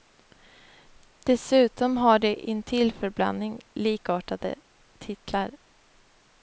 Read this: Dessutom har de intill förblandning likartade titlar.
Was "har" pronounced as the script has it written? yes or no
yes